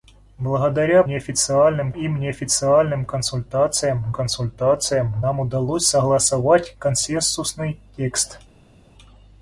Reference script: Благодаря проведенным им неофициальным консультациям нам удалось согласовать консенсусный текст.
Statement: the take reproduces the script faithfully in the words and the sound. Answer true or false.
false